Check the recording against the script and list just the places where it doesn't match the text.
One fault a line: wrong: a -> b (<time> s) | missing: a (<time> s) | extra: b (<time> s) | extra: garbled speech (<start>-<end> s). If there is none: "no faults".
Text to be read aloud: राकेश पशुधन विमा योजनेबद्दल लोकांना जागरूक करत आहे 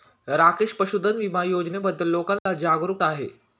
missing: करत (3.0 s)